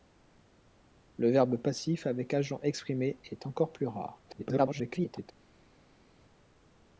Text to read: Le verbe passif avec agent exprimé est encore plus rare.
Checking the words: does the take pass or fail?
fail